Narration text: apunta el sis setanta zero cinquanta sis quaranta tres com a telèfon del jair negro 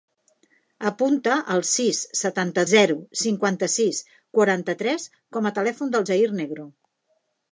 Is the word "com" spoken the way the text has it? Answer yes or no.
yes